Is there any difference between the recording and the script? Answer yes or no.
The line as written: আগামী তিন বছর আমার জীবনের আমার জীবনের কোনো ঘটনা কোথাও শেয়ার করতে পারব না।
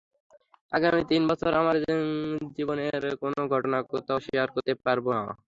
yes